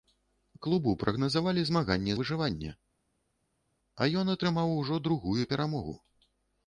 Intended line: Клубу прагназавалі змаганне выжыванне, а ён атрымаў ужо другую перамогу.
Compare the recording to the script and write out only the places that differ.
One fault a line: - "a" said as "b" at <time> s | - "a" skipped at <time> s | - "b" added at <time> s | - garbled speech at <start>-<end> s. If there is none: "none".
none